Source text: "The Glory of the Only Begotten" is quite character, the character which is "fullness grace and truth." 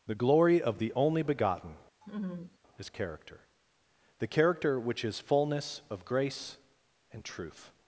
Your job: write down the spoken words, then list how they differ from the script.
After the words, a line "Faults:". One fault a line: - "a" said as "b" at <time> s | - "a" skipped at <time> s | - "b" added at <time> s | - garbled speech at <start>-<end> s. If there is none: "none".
"The Glory of the Only Begotten" is character, the character which is "fullness of grace and truth."
Faults:
- "quite" skipped at 2.9 s
- "of" added at 5.9 s